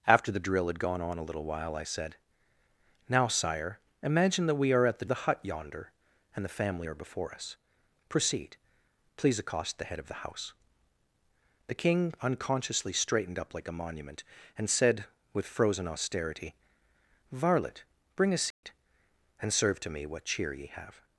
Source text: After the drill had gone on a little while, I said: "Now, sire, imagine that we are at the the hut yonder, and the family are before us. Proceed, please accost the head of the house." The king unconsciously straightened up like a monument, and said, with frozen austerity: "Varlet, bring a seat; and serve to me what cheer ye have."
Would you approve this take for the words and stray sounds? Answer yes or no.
no